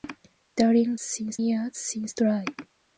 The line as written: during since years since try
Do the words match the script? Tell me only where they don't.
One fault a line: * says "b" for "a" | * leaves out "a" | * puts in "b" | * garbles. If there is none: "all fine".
all fine